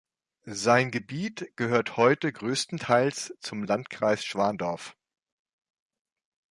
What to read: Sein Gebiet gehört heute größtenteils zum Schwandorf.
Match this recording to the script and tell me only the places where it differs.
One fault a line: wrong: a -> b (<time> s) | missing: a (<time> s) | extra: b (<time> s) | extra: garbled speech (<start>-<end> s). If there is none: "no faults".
extra: Landkreis (3.6 s)